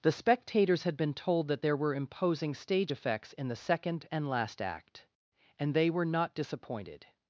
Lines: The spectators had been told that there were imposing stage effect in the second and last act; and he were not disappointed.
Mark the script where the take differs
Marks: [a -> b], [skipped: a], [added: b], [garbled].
The spectators had been told that there were imposing stage [effect -> effects] in the second and last act; and [he -> they] were not disappointed.